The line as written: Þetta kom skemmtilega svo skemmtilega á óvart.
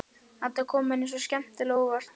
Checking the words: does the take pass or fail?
fail